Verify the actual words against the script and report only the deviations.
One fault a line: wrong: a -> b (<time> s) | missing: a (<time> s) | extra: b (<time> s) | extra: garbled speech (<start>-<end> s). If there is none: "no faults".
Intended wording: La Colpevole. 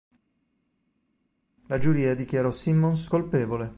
extra: Giuria dichiarò Simmons (1.8 s)